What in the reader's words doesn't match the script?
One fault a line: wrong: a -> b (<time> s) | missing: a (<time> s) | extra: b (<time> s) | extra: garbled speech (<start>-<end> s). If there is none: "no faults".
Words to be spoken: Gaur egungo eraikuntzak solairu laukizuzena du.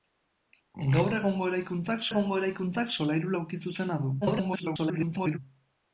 extra: egungo eraikuntzak (2.1 s)
extra: garbled speech (4.2-5.4 s)